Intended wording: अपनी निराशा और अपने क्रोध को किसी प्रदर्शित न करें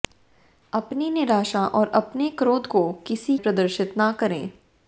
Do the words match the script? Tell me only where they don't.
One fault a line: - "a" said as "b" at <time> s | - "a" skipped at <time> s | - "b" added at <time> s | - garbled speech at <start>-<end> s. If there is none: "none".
none